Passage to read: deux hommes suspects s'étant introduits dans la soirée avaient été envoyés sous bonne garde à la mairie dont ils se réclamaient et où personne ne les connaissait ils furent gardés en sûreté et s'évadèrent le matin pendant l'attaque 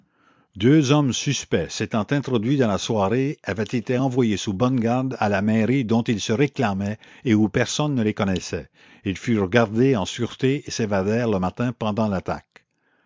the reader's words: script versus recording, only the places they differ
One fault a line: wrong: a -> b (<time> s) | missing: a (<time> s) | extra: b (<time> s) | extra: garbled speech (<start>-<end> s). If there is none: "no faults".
no faults